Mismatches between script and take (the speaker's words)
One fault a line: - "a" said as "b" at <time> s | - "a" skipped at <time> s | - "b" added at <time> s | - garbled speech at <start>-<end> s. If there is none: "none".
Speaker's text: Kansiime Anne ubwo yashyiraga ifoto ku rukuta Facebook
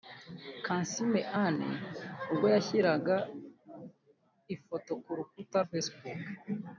none